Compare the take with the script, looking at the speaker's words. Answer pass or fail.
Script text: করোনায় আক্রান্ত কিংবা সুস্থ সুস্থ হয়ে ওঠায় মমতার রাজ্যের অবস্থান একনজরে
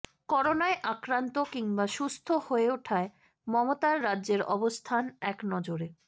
fail